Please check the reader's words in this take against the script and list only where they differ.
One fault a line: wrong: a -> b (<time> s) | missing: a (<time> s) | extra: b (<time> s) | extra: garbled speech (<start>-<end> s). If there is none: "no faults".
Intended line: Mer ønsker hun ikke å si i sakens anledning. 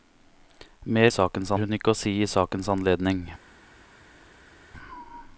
wrong: ønsker -> sakens (1.1 s)